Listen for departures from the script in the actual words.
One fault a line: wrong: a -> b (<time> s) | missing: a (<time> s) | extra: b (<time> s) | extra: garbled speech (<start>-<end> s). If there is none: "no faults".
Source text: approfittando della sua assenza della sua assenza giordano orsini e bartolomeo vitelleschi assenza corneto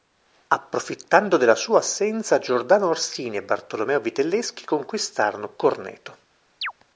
missing: della sua assenza (2.4 s)
wrong: assenza -> conquistarono (4.7 s)